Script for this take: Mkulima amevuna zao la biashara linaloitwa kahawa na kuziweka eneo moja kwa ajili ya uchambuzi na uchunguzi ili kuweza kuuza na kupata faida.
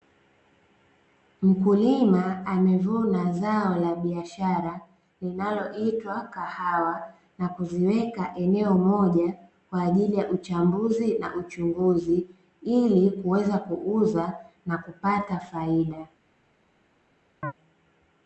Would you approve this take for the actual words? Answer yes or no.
yes